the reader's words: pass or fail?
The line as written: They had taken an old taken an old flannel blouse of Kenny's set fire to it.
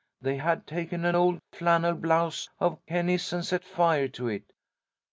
fail